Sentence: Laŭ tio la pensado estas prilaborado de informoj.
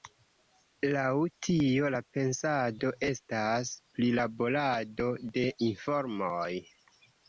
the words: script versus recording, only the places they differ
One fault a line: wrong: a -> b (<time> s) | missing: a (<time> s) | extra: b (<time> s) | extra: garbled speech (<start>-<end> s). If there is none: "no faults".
no faults